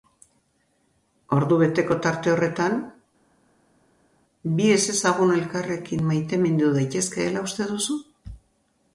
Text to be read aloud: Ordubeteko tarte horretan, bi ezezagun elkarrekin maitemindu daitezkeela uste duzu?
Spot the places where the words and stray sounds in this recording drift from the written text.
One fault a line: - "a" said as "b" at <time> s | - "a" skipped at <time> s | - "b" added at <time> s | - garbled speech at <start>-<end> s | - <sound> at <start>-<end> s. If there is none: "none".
none